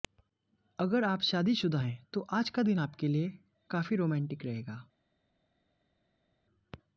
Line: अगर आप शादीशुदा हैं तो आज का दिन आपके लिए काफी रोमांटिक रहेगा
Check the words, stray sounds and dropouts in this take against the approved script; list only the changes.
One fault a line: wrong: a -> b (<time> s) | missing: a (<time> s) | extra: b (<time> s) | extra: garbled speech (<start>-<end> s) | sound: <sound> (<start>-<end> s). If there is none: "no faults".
no faults